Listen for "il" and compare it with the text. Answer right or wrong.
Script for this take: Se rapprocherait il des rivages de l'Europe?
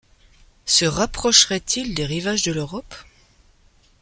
right